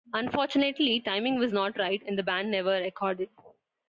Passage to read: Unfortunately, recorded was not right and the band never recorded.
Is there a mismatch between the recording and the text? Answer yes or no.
yes